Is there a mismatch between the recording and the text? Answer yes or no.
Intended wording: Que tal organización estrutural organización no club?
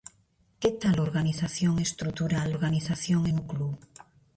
no